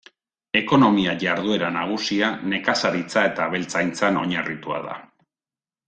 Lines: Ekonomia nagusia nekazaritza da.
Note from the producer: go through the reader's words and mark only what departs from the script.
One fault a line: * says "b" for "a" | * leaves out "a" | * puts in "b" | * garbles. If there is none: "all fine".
* puts in "jarduera"
* puts in "eta abeltzaintzan oinarritua"